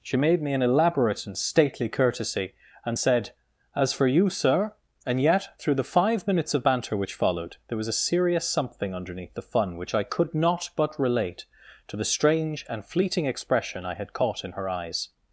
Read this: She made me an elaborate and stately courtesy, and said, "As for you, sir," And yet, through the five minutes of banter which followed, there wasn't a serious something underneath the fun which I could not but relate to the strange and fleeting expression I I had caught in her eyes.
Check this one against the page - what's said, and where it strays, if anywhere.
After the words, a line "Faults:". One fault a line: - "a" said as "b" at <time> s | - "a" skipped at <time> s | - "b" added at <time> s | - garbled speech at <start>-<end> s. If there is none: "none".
She made me an elaborate and stately courtesy, and said, "As for you, sir," And yet, through the five minutes of banter which followed, there was a serious something underneath the fun which I could not but relate to the strange and fleeting expression I had caught in her eyes.
Faults:
- "wasn't" said as "was" at 7.8 s
- "I" skipped at 13.9 s